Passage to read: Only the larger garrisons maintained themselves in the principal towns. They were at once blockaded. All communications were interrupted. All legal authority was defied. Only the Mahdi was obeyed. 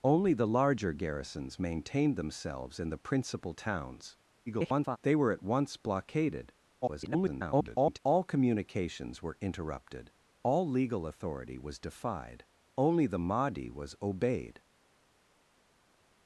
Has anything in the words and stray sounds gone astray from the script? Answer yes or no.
yes